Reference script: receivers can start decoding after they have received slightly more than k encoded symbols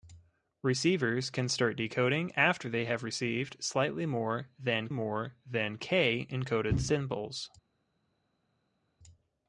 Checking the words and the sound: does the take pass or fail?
fail